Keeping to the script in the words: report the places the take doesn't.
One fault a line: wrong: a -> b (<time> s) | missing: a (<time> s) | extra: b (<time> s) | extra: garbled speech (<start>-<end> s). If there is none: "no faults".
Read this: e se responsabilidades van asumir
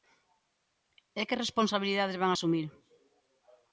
wrong: se -> que (1.3 s)